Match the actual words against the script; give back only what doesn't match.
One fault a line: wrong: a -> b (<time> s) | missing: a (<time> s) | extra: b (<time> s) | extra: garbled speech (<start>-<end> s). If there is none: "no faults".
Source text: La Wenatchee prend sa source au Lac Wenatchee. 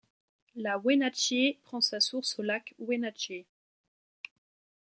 no faults